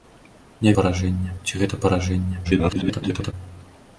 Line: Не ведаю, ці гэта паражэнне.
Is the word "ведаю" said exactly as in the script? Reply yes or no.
no